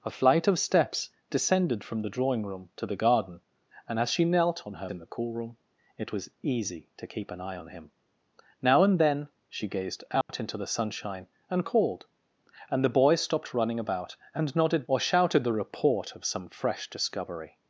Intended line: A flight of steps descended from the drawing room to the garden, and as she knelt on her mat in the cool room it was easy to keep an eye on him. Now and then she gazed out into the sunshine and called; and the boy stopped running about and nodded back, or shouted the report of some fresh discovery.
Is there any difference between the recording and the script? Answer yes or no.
yes